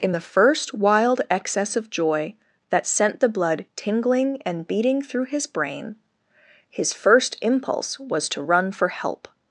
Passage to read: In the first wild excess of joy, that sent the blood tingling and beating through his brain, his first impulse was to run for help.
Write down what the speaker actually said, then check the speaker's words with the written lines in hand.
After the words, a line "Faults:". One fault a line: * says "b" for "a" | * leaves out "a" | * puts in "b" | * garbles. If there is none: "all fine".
In the first wild excess of joy, that sent the blood tingling and beating through his brain, his first impulse was to run for help.
Faults:
all fine